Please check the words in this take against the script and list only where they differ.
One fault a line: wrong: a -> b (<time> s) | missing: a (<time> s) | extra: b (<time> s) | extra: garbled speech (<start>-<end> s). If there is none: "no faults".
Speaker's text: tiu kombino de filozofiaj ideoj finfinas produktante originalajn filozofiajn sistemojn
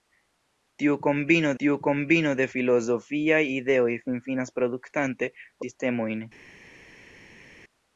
extra: tiu kombino (1.6 s)
missing: originalajn filozofiajn (5.3 s)